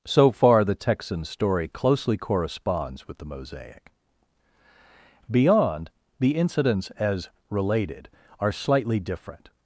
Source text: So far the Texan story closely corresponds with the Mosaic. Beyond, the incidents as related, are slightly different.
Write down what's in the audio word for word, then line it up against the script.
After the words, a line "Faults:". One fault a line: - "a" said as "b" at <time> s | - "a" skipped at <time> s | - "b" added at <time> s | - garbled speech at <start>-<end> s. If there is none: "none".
So far the Texan story closely corresponds with the Mosaic. Beyond, the incidents as related, are slightly different.
Faults:
none